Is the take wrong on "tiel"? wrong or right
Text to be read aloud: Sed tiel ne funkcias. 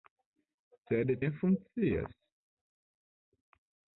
wrong